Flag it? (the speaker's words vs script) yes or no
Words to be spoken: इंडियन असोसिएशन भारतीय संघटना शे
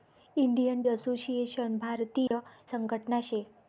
no